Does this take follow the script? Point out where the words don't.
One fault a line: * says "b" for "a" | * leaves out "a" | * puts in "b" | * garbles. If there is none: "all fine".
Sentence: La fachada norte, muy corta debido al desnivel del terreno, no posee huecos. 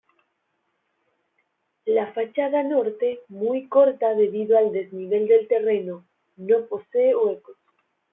all fine